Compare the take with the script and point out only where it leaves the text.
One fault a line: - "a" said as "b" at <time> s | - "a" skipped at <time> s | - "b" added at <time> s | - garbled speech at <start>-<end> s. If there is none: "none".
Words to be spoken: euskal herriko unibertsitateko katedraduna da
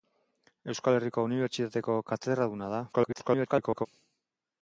- garbled speech at 2.9-3.9 s